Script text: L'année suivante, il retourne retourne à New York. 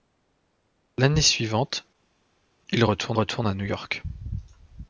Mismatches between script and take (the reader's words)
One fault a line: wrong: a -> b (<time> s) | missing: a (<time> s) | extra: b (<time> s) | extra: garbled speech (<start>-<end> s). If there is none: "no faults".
no faults